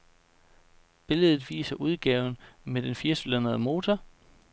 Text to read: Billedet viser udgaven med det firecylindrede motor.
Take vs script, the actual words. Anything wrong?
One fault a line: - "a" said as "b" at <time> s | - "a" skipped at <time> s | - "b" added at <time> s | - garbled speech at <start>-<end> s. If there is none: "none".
- "det" said as "den" at 2.8 s